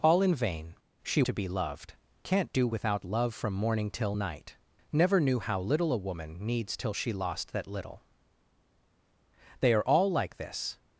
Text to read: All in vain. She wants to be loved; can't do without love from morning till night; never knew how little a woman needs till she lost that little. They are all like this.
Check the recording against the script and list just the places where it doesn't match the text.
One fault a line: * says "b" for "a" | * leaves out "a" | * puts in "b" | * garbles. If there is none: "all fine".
* leaves out "wants"